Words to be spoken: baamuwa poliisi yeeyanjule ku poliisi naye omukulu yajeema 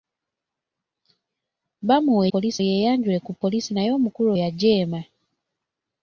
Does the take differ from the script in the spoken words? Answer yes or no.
no